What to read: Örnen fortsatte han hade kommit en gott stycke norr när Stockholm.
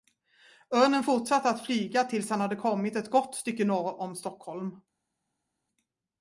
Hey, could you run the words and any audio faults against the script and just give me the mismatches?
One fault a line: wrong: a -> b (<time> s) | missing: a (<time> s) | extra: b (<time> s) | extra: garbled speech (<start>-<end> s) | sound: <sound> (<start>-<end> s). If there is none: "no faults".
extra: att flyga tills (1.5 s)
wrong: en -> ett (2.9 s)
wrong: när -> om (4.0 s)